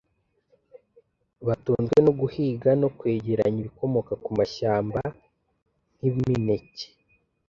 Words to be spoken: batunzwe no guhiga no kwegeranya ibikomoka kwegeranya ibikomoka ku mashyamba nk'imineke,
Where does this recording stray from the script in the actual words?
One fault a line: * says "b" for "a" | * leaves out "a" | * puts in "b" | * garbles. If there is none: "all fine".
* leaves out "kwegeranya ibikomoka"